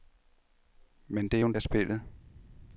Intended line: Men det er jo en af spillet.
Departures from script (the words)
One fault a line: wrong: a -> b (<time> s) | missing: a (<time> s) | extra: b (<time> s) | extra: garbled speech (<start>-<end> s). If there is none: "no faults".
no faults